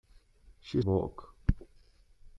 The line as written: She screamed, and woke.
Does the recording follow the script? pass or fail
fail